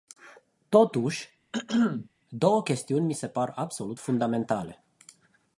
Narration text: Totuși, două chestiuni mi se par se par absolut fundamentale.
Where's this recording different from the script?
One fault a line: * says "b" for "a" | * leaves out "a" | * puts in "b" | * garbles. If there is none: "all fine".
* leaves out "se par"